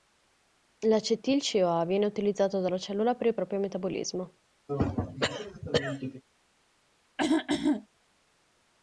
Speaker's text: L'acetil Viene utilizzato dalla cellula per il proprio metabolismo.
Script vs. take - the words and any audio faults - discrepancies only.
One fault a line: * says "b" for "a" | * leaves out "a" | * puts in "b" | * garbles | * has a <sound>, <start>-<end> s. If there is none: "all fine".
* puts in "CoA"
* has a throat clearing, 4.7-6.2 s
* has a throat clearing, 7.2-7.9 s